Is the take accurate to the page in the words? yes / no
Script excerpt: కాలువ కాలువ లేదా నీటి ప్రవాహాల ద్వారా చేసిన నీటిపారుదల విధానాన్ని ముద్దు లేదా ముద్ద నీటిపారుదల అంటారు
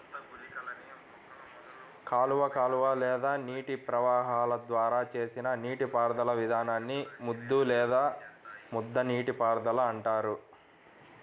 yes